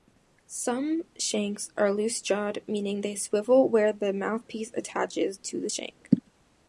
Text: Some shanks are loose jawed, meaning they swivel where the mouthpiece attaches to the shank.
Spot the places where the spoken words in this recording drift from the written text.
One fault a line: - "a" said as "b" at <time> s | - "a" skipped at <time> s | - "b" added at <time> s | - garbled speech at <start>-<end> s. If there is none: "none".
none